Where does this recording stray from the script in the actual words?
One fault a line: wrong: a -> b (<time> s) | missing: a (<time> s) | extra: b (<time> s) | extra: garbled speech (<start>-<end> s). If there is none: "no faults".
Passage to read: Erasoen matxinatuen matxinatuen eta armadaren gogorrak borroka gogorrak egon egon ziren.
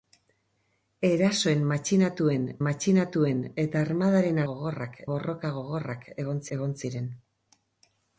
no faults